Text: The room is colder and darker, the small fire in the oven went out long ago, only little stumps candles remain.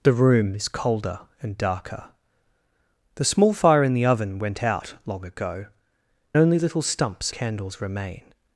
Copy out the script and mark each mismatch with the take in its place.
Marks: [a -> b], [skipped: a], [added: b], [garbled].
The room is colder and darker, the small fire in the oven went out long ago, only little stumps candles remain.